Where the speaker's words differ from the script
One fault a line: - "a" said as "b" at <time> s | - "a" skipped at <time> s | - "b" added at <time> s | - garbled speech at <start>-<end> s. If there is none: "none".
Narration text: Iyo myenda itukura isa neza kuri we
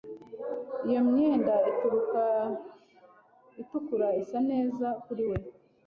none